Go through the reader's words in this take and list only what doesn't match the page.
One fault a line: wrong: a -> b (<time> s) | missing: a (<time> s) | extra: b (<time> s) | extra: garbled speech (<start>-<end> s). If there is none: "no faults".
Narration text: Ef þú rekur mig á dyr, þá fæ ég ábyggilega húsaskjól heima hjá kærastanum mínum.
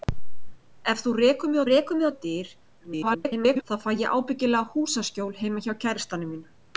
extra: rekur mig (1.7 s)
extra: garbled speech (2.8-3.6 s)